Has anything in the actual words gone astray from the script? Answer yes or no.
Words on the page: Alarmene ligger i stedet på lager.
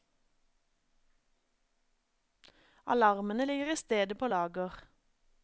no